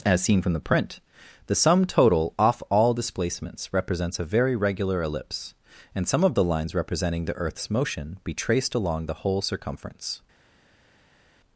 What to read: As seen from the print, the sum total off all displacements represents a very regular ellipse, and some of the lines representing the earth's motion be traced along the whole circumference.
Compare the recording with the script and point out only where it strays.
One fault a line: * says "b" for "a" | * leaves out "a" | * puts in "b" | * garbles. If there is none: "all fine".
all fine